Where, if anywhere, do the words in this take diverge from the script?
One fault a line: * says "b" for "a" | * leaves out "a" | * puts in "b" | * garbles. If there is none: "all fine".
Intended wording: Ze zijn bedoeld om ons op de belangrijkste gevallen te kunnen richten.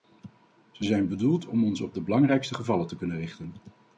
all fine